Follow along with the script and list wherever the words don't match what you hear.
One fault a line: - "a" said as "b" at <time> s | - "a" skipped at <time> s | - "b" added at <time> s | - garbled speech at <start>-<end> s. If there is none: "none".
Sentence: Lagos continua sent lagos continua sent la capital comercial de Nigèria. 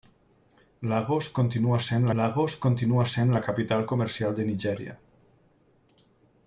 none